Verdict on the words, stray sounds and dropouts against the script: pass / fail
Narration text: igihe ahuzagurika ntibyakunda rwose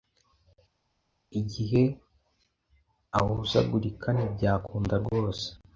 pass